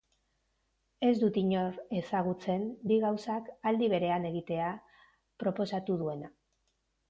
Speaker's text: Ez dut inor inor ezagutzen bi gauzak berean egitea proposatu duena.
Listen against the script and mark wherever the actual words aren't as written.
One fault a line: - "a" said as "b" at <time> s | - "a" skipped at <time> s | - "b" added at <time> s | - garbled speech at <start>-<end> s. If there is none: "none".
- "inor" skipped at 1.8 s
- "aldi" added at 3.7 s